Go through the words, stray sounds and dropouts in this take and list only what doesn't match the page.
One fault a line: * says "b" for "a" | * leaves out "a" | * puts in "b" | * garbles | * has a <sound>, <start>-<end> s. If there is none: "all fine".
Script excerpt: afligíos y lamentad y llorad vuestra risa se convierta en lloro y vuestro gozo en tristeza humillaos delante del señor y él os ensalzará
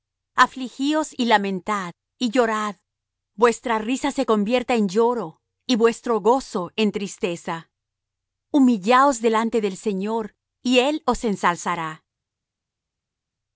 all fine